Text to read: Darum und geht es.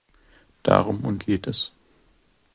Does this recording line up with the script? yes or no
yes